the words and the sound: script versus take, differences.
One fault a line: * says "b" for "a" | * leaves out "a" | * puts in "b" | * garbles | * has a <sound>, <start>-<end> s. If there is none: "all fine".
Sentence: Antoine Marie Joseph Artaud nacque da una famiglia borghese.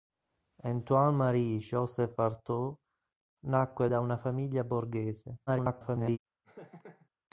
* garbles
* has a laugh, 6.4-7.1 s